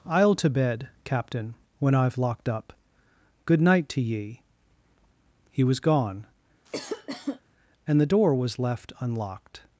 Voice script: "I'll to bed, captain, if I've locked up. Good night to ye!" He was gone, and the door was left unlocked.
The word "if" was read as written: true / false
false